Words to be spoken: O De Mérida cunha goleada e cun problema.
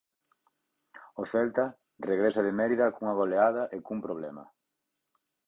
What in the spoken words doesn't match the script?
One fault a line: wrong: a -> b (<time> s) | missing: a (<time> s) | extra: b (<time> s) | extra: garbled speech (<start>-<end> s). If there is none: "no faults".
extra: Celta regresa (1.3 s)